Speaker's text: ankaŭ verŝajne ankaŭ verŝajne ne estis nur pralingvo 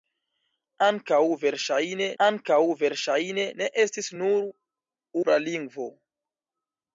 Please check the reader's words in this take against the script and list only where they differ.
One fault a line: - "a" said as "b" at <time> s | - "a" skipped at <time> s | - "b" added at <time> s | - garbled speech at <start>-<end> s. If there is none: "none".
none